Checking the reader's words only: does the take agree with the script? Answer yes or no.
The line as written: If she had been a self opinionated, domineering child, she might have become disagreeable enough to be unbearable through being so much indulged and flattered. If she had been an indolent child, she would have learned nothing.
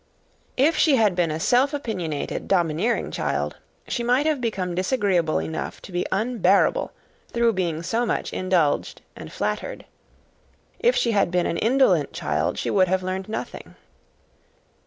yes